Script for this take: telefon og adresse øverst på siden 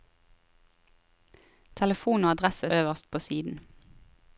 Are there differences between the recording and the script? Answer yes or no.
no